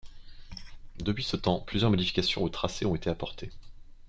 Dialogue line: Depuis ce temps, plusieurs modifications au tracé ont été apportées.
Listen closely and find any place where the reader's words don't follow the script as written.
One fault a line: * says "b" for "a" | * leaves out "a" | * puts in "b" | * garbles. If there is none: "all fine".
all fine